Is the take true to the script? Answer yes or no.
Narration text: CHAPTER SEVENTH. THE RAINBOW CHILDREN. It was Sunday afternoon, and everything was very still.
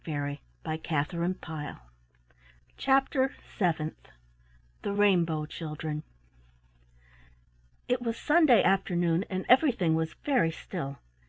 yes